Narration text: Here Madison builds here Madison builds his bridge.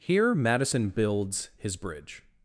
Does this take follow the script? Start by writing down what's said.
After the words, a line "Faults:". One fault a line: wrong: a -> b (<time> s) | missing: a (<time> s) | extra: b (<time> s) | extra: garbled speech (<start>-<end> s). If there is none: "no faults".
Here Madison builds his bridge.
Faults:
missing: here Madison builds (1.5 s)